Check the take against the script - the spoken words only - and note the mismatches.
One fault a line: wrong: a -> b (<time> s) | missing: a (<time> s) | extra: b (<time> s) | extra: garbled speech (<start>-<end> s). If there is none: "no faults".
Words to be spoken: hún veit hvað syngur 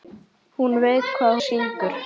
no faults